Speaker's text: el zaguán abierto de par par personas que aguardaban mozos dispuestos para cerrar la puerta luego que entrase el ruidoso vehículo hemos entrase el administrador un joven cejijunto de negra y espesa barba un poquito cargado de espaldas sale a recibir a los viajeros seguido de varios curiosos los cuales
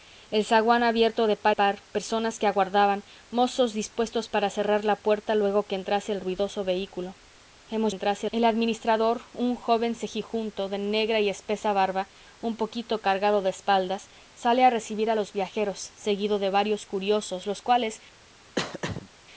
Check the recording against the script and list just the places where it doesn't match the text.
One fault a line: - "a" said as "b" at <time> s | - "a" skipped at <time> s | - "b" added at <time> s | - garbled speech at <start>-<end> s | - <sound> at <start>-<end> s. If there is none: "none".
- throat clearing at 18.6-19.1 s